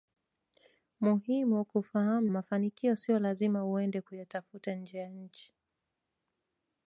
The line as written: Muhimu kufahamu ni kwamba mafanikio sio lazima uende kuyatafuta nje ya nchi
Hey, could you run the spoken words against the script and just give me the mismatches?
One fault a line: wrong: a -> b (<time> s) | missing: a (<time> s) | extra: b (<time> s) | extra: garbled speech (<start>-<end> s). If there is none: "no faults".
missing: ni kwamba (2.3 s)